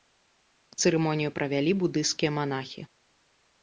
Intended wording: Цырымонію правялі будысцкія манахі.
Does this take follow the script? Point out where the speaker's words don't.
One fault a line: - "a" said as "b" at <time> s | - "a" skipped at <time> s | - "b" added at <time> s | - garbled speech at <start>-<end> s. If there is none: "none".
none